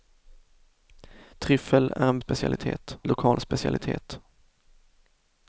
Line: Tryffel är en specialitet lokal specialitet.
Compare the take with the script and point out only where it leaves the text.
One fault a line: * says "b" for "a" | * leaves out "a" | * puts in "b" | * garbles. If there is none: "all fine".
all fine